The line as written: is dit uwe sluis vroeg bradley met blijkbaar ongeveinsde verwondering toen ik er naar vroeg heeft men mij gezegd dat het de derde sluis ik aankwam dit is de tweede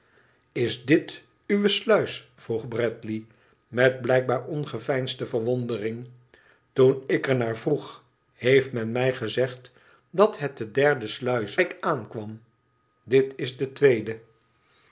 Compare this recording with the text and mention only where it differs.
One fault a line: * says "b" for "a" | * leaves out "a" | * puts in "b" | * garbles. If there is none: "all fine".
all fine